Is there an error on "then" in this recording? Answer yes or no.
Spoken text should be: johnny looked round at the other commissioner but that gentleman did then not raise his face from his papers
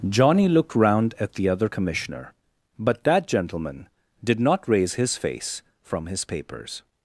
yes